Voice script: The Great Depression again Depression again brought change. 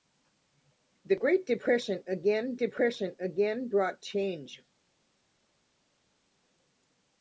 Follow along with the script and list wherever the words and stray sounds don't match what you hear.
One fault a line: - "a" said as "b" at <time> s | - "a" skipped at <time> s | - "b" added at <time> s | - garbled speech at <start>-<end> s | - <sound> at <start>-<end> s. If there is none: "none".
none